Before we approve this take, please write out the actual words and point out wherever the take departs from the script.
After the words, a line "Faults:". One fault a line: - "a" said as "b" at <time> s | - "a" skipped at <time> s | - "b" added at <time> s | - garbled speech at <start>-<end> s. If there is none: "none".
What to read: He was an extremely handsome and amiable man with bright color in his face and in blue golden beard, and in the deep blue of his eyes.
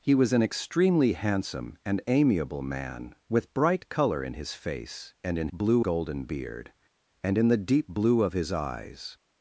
He was an extremely handsome and amiable man with bright color in his face and in blue golden beard, and in the deep blue of his eyes.
Faults:
none